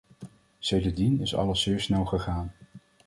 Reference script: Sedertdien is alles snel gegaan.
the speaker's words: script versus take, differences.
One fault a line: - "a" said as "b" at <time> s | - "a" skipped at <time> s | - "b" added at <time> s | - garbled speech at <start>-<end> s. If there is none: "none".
- "zeer" added at 1.6 s